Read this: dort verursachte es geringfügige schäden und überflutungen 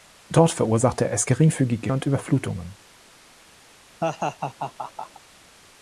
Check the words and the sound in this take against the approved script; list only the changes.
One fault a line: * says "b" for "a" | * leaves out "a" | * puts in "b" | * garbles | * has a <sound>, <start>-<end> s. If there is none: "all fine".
* leaves out "schäden"
* has a laugh, 4.0-5.2 s